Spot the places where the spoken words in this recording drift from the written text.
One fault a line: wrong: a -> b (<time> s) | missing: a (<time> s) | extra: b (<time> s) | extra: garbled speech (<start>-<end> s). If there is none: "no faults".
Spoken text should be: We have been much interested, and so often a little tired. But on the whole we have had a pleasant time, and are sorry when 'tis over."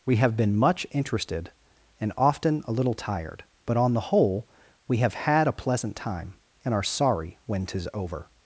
missing: so (2.1 s)